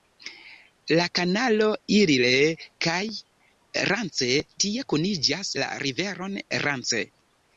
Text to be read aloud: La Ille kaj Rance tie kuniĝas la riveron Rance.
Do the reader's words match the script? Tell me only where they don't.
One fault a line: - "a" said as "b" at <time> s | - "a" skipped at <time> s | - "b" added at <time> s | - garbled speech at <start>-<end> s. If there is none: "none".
- "kanalo" added at 1.2 s